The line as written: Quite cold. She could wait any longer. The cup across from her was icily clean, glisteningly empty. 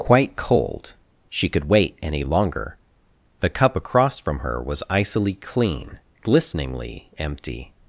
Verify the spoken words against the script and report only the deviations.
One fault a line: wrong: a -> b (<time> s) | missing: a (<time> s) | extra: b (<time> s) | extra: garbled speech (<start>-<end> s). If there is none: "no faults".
no faults